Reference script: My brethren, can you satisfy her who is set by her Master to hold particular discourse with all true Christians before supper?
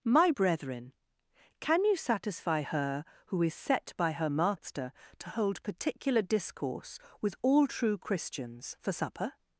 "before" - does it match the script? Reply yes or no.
no